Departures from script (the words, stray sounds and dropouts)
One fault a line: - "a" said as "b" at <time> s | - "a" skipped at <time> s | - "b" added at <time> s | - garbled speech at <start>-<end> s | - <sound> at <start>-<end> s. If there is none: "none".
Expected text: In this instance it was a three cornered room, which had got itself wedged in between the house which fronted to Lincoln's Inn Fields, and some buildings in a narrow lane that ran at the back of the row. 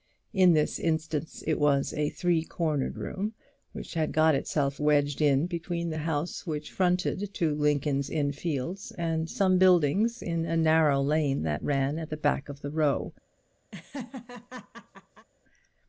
- laugh at 13.7-15.3 s